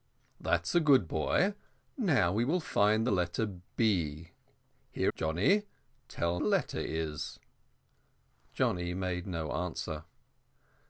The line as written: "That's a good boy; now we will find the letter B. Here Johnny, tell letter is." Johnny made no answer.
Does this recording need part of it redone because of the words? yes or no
no